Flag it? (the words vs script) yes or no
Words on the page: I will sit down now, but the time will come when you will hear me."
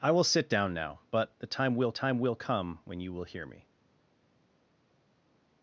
yes